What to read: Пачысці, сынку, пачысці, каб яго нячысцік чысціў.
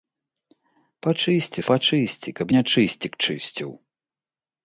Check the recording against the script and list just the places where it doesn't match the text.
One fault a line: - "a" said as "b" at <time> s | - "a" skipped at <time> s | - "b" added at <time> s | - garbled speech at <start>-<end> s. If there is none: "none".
- "сынку" skipped at 1.6 s
- "яго" skipped at 2.5 s